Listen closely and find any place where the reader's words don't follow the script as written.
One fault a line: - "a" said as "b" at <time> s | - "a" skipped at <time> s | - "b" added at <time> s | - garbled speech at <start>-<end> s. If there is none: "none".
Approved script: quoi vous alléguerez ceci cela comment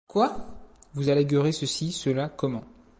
none